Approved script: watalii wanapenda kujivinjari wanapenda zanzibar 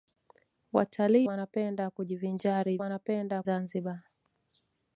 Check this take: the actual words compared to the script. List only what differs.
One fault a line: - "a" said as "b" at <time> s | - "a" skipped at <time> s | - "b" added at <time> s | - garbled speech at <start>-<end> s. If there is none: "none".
none